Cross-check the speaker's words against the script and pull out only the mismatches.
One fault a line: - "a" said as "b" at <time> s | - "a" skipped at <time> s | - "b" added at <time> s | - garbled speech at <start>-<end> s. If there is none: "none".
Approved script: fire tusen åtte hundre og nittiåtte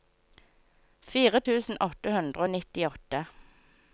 none